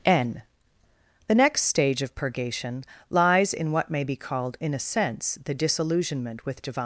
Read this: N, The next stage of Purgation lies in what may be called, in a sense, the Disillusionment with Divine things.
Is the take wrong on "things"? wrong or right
wrong